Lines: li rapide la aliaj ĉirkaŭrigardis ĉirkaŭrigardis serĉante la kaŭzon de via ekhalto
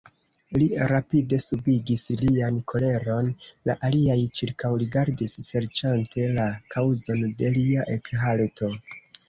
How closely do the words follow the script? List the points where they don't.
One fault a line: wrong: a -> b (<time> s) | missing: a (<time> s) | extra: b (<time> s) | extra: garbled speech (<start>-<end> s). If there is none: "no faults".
extra: subigis lian koleron (1.4 s)
missing: ĉirkaŭrigardis (5.4 s)
wrong: via -> lia (7.6 s)